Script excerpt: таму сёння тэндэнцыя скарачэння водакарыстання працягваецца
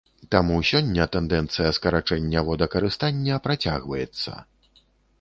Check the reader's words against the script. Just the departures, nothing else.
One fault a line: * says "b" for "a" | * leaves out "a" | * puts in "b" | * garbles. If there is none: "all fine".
all fine